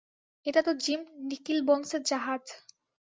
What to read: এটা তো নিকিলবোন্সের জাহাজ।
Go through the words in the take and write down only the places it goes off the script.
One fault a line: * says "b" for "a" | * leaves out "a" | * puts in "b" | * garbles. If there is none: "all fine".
* puts in "জিম"